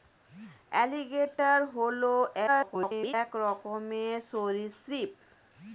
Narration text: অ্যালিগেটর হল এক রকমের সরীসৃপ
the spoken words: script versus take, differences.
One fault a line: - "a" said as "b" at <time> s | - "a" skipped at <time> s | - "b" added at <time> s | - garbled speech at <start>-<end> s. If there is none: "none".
- garbled speech at 2.5-3.1 s